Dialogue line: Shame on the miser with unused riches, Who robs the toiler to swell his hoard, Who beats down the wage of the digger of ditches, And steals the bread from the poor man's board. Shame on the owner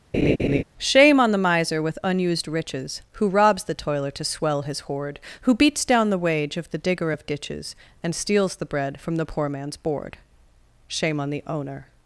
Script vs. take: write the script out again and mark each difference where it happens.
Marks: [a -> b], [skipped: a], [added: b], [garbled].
Shame on the miser with unused riches, Who robs the toiler to swell his hoard, Who beats down the wage of the digger of ditches, And steals the bread from the poor man's board. Shame on the owner